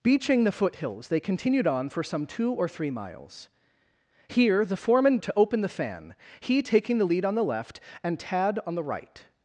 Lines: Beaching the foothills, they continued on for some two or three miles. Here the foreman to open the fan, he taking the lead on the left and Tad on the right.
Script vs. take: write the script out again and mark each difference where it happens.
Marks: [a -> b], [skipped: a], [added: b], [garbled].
Beaching the foothills, they continued on for some two or three miles. Here the foreman to open the fan, he taking the lead on the left and Tad on the right.